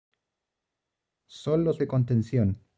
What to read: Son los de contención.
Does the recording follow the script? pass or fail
pass